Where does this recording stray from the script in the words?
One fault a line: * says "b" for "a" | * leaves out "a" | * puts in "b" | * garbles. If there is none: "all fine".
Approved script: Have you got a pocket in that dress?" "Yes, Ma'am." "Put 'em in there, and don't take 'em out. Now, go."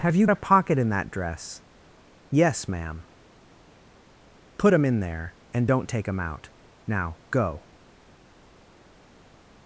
* leaves out "got"